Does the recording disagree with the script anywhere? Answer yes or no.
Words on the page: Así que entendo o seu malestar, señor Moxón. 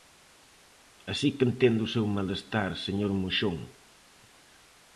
no